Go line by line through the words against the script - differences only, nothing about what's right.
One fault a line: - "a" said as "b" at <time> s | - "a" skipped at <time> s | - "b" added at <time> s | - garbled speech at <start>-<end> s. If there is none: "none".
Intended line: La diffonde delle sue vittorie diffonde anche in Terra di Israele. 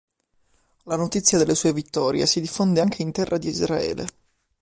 - "diffonde" said as "notizia" at 0.9 s
- "si" added at 2.2 s